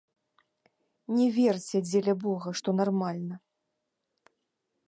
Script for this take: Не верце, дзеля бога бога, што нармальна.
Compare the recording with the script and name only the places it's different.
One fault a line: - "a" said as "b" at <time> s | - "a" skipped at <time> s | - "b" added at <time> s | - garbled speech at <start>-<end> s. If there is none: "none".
- "бога" skipped at 2.5 s